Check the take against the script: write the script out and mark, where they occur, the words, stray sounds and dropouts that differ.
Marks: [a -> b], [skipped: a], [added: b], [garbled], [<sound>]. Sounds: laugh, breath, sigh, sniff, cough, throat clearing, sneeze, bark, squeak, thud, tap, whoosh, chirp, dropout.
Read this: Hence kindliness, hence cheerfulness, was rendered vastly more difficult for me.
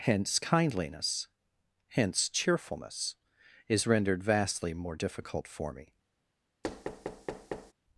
Hence kindliness, hence cheerfulness, [was -> is] rendered vastly more difficult for me. [thud]